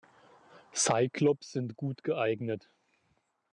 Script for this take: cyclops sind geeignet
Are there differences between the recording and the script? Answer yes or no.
yes